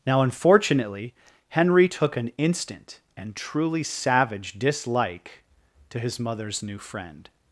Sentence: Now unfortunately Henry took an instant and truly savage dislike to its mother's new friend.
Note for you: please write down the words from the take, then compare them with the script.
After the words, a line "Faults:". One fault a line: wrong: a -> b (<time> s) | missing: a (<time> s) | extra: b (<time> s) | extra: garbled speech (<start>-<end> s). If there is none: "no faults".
Now unfortunately Henry took an instant and truly savage dislike to his mother's new friend.
Faults:
wrong: its -> his (6.0 s)